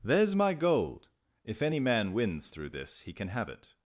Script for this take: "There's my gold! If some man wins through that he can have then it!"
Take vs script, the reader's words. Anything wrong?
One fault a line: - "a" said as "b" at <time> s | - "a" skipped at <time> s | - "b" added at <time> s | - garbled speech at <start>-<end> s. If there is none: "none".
- "some" said as "any" at 1.6 s
- "that" said as "this" at 2.7 s
- "then" skipped at 3.5 s